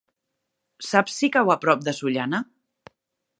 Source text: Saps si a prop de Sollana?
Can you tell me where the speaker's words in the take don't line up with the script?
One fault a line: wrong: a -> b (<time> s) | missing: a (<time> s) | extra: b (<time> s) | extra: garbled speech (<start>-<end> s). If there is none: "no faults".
extra: cau (1.4 s)